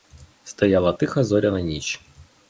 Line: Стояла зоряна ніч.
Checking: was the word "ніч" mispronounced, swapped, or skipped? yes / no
no